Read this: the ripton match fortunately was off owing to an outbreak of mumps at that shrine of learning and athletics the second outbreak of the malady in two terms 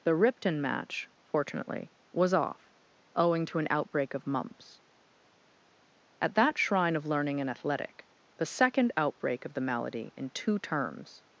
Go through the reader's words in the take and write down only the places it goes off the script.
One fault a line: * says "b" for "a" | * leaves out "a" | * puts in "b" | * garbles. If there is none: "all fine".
* says "athletic" for "athletics"